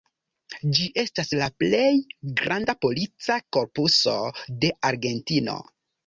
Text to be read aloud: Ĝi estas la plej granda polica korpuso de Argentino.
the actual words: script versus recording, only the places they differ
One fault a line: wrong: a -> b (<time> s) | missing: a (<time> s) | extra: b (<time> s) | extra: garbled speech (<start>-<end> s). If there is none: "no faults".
no faults